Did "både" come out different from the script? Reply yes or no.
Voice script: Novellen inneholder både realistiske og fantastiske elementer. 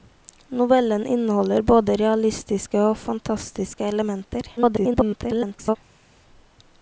no